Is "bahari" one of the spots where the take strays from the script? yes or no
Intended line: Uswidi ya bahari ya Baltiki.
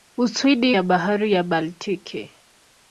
no